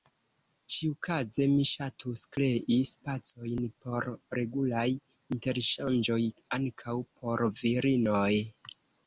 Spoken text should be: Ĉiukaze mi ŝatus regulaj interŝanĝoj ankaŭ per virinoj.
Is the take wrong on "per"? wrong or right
wrong